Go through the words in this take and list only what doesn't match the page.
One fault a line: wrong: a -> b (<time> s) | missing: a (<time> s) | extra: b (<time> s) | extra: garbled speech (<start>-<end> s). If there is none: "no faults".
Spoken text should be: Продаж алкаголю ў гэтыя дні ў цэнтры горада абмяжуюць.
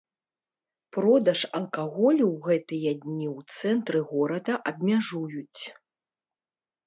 no faults